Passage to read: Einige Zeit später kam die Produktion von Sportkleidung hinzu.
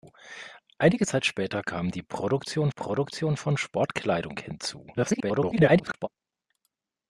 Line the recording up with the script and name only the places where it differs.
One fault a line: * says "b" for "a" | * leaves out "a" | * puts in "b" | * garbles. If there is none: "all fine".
* puts in "Produktion"
* garbles